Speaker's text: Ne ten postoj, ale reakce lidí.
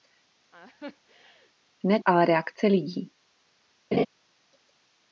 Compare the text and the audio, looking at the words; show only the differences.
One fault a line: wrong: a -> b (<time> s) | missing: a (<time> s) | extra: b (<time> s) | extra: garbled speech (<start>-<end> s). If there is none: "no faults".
missing: ten postoj (2.0 s)